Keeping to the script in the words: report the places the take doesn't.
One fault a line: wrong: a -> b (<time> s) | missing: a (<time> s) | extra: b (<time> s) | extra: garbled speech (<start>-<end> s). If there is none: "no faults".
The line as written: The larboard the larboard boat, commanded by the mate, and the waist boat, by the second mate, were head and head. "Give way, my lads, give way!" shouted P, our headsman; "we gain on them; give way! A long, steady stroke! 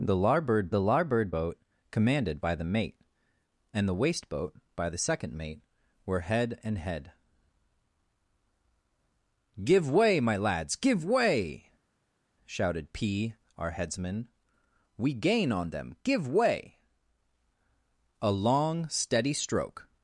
no faults